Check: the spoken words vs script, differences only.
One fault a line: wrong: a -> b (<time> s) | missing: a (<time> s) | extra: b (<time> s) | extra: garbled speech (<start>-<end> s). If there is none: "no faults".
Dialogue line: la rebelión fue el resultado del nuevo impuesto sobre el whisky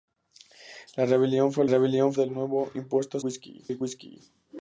wrong: resultado -> rebelión (1.7 s)
wrong: sobre -> whisky (3.2 s)